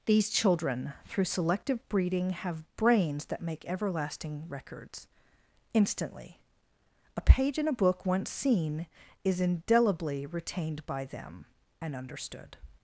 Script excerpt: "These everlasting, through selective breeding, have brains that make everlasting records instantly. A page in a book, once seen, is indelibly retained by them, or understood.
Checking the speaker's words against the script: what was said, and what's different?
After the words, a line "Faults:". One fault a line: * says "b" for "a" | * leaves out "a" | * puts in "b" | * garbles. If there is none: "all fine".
"These children, through selective breeding, have brains that make everlasting records instantly. A page in a book, once seen, is indelibly retained by them, and understood.
Faults:
* says "children" for "everlasting"
* says "and" for "or"